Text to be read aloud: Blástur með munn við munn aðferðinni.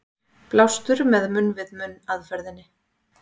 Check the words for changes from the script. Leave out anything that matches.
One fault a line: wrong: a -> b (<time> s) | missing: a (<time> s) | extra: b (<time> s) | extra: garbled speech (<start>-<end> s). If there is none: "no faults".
no faults